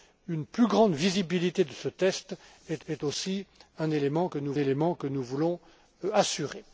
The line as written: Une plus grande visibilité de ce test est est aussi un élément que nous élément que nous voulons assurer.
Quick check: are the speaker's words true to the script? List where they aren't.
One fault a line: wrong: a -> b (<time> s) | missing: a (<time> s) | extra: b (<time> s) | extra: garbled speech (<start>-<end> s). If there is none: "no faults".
no faults